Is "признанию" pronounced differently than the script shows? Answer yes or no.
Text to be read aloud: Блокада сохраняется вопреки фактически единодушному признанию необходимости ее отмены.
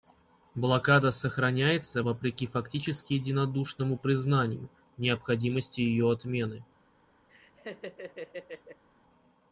no